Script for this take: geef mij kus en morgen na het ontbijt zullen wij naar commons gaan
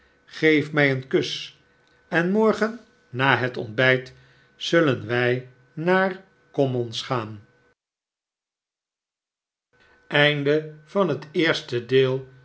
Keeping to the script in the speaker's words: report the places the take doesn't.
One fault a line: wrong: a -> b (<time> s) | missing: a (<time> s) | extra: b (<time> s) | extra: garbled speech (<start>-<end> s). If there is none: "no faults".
extra: een (0.9 s)